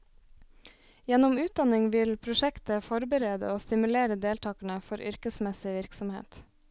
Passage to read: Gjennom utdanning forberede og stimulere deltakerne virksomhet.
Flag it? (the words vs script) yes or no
yes